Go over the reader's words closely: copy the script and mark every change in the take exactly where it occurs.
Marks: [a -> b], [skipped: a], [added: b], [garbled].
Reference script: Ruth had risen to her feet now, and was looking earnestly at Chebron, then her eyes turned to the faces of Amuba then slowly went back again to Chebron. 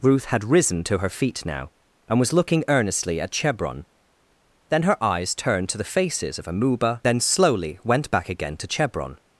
Ruth had risen to her feet now, and was looking earnestly at Chebron, then her eyes turned to the faces of Amuba then slowly went back again to Chebron.